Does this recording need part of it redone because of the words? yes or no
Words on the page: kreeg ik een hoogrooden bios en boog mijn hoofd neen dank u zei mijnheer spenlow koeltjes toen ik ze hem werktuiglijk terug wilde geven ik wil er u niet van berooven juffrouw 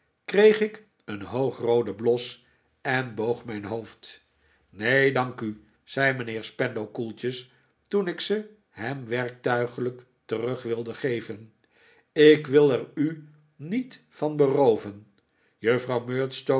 no